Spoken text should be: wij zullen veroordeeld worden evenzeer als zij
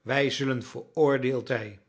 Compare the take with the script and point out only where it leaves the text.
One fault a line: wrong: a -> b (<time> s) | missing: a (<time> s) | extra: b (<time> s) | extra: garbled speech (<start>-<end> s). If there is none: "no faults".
missing: worden evenzeer als (1.5 s)